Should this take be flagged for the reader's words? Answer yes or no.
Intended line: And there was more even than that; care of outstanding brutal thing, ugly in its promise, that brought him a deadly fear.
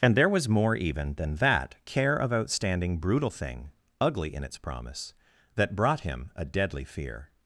no